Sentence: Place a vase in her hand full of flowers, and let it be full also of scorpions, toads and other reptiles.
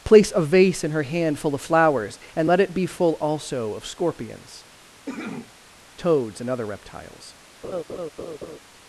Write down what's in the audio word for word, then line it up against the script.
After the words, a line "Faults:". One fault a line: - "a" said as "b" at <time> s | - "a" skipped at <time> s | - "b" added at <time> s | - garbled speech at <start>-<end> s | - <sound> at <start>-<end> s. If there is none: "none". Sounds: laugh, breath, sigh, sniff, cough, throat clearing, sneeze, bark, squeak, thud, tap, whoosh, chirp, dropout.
Place a vase in her hand full of flowers, and let it be full also of scorpions, toads and other reptiles.
Faults:
- cough at 5.1-5.5 s
- laugh at 7.6-8.6 s